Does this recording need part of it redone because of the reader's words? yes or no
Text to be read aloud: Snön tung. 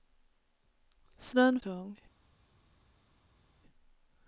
no